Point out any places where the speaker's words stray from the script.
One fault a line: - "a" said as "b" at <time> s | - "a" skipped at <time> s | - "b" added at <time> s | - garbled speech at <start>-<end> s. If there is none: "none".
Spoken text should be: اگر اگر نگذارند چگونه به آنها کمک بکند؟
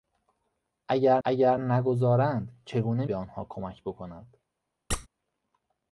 none